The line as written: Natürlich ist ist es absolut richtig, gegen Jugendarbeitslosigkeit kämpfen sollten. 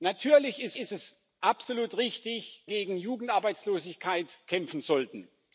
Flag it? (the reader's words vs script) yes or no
no